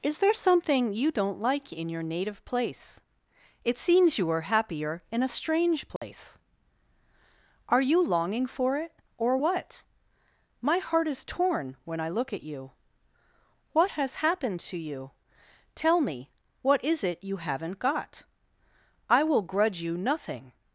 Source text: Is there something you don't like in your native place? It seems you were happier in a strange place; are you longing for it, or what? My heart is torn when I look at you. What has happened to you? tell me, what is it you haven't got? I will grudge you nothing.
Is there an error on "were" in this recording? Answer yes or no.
yes